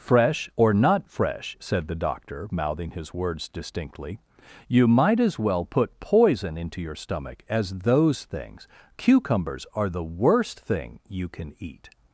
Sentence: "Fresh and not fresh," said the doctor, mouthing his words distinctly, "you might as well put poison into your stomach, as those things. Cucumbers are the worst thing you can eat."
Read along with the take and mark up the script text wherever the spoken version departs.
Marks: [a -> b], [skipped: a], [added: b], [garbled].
"Fresh [and -> or] not fresh," said the doctor, mouthing his words distinctly, "you might as well put poison into your stomach, as those things. Cucumbers are the worst thing you can eat."